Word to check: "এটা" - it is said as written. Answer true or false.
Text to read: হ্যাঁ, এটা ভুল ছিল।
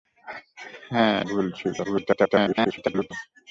false